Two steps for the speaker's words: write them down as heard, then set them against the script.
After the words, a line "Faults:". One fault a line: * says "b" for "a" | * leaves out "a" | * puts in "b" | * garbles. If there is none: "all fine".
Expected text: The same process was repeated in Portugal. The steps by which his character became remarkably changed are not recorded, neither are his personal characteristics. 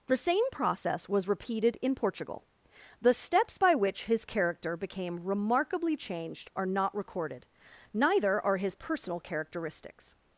The same process was repeated in Portugal. The steps by which his character became remarkably changed are not recorded, neither are his personal characteristics.
Faults:
all fine